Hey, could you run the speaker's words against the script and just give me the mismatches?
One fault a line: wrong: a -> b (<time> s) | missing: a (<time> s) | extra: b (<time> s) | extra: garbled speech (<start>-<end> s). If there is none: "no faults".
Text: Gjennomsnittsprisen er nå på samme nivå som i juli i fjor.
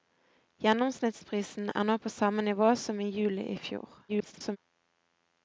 extra: garbled speech (4.1-4.6 s)